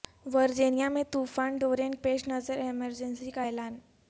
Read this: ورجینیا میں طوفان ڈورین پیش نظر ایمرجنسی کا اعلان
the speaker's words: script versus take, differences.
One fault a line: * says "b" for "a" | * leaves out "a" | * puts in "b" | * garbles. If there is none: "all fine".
all fine